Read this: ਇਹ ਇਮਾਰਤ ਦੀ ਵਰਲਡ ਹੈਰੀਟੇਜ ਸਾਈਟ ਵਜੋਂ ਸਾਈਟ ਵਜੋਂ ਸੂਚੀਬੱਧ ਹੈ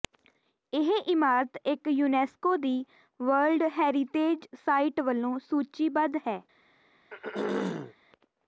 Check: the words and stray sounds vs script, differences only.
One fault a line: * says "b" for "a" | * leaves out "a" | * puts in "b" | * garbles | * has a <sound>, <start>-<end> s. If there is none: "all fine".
* puts in "ਇੱਕ ਯੂਨੈਸਕੋ"
* leaves out "ਸਾਈਟ ਵਜੋਂ"
* has a throat clearing, 7.1-7.9 s